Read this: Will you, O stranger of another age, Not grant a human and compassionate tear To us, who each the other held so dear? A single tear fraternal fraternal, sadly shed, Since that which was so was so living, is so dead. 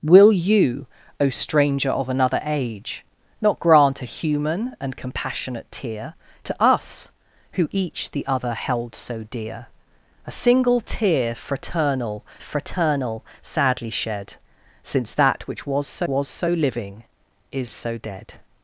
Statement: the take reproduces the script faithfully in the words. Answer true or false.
true